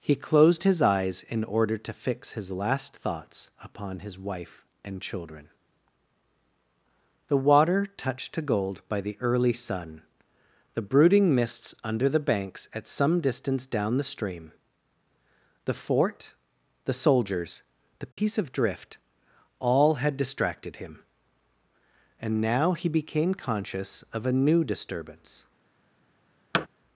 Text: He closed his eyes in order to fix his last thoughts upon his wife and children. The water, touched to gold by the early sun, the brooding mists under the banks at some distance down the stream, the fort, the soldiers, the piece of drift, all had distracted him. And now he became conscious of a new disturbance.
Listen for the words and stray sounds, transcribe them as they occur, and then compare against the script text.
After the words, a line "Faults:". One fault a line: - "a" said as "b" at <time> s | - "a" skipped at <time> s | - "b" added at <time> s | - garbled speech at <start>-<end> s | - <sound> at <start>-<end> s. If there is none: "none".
He closed his eyes in order to fix his last thoughts upon his wife and children. The water, touched to gold by the early sun, the brooding mists under the banks at some distance down the stream, the fort, the soldiers, the piece of drift, all had distracted him. And now he became conscious of a new disturbance.
Faults:
- dropout at 18.1-18.2 s
- thud at 26.5-26.7 s